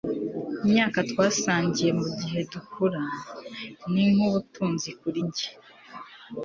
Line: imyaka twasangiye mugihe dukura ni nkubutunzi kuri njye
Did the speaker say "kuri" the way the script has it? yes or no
yes